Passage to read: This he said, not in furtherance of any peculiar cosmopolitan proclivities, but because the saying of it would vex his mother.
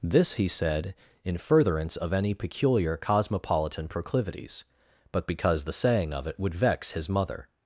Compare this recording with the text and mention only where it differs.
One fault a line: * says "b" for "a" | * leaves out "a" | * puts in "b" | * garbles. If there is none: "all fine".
* leaves out "not"